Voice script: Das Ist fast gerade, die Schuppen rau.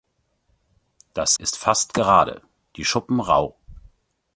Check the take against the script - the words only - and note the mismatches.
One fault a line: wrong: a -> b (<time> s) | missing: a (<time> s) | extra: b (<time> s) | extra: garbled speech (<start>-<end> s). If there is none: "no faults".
no faults